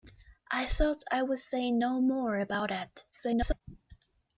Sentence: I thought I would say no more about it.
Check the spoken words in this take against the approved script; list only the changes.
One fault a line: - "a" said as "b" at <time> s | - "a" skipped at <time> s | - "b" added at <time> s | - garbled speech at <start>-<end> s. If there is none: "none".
- garbled speech at 3.1-3.6 s